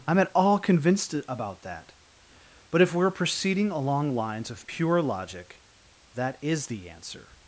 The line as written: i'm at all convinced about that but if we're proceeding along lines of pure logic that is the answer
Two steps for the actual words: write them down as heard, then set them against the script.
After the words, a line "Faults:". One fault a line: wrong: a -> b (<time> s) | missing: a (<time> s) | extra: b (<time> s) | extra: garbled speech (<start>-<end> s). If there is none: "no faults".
i'm at all convinced about that but if we're proceeding along lines of pure logic that is the answer
Faults:
no faults